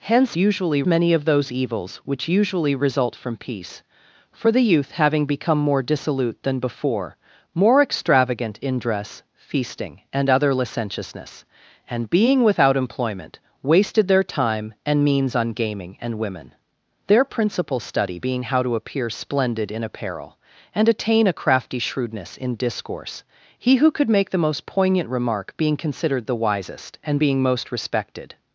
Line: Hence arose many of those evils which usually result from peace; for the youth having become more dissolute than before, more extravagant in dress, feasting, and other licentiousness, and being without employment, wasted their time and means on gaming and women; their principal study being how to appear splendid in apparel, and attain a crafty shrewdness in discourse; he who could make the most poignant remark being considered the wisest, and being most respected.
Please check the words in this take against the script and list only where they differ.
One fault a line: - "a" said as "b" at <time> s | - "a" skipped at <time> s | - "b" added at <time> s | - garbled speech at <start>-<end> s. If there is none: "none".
- "arose" said as "usually" at 0.4 s